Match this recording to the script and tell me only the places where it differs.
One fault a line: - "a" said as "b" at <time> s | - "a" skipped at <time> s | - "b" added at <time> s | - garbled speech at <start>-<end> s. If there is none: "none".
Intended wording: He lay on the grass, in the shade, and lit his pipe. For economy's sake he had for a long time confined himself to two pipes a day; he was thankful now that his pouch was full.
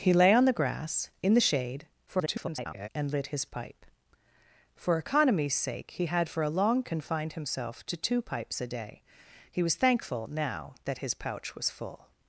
- garbled speech at 2.1-2.9 s
- "time" skipped at 6.8 s